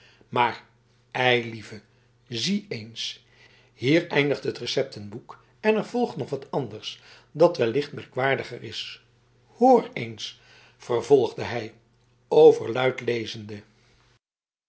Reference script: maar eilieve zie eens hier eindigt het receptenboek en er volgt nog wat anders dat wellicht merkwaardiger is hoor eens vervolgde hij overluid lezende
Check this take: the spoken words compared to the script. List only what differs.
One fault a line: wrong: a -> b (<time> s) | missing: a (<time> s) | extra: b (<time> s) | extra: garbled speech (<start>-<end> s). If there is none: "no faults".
no faults